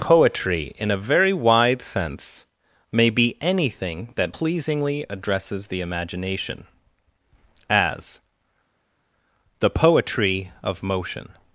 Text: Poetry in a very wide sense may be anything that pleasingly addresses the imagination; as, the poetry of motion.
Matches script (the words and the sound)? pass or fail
pass